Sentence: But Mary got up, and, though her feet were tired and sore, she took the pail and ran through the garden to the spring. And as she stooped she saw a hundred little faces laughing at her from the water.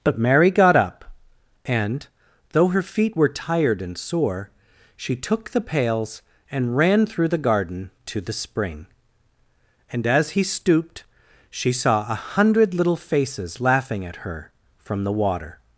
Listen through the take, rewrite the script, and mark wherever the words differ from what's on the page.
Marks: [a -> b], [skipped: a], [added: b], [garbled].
But Mary got up, and, though her feet were tired and sore, she took the [pail -> pails] and ran through the garden to the spring. And as [she -> he] stooped she saw a hundred little faces laughing at her from the water.